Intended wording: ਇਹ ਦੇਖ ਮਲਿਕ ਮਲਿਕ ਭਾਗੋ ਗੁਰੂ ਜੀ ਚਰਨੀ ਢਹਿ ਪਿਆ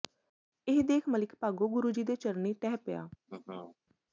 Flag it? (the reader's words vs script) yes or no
yes